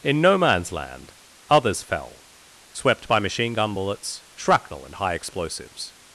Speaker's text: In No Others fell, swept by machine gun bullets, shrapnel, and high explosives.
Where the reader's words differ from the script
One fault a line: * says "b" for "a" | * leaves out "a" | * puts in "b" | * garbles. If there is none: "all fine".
* puts in "Man's Land"